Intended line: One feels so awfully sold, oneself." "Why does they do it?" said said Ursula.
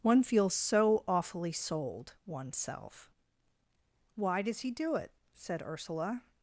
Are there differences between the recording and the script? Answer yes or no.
yes